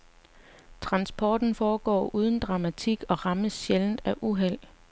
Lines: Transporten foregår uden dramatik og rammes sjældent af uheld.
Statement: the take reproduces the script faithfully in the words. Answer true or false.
true